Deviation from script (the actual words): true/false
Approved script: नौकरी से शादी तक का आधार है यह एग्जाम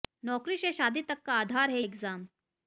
true